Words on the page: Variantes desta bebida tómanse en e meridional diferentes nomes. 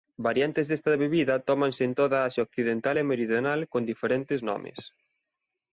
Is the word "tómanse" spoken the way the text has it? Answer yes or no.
yes